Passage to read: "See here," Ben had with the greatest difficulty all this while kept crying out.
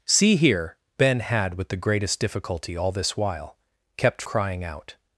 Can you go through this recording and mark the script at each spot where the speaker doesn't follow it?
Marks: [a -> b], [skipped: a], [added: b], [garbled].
"See here," Ben had with the greatest difficulty all this while kept crying out.